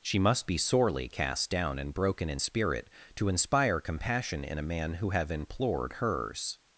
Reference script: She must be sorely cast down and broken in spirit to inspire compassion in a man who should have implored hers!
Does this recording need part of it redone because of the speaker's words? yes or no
yes